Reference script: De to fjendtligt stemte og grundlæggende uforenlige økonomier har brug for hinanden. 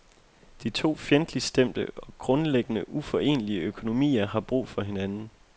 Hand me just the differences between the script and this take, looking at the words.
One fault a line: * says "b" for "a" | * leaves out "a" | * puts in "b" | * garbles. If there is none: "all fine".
all fine